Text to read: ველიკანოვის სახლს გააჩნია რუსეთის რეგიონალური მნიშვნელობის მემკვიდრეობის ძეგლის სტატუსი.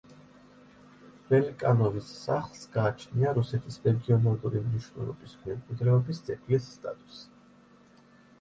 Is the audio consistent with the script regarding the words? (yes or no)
yes